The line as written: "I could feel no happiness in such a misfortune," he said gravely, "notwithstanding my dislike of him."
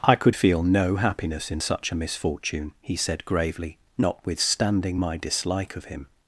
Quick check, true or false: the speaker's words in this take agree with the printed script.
true